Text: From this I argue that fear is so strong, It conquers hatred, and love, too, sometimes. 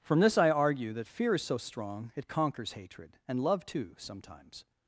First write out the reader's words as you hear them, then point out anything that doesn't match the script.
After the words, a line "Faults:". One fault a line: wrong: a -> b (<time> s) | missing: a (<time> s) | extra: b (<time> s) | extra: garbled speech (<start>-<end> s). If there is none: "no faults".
From this I argue that fear is so strong, It conquers hatred, and love, too, sometimes.
Faults:
no faults